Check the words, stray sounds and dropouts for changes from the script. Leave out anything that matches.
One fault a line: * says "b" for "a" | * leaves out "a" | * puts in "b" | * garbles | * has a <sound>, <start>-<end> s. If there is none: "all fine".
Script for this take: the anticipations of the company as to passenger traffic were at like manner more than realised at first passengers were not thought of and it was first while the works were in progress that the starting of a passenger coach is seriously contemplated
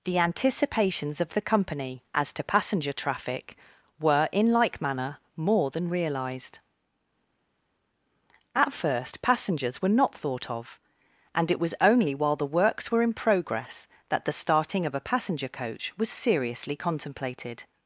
* says "in" for "at"
* says "only" for "first"
* says "was" for "is"